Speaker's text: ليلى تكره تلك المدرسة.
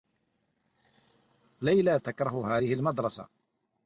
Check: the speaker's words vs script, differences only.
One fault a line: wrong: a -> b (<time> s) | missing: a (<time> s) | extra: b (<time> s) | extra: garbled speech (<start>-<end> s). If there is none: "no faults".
wrong: تلك -> هذه (2.5 s)